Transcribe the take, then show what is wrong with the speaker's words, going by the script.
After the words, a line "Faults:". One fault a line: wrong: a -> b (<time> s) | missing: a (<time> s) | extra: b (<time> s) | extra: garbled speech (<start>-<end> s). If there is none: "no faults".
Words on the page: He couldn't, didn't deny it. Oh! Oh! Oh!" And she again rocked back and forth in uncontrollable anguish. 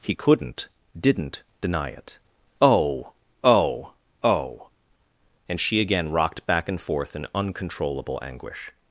He couldn't, didn't deny it. Oh! Oh! Oh!" And she again rocked back and forth in uncontrollable anguish.
Faults:
no faults